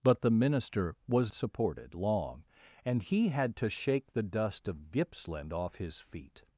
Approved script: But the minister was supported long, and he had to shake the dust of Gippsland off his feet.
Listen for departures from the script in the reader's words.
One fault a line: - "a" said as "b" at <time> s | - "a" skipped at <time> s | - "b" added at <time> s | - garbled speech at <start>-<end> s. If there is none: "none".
none